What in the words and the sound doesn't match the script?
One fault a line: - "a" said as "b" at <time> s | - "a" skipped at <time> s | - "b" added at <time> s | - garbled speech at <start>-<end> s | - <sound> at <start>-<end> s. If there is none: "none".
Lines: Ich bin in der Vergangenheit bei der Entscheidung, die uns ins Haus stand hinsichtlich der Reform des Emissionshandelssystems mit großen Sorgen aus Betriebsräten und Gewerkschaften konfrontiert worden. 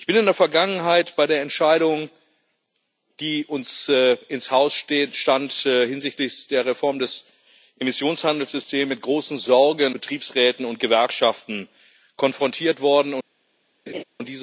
- "aus" skipped at 10.0 s
- laugh at 13.9-14.0 s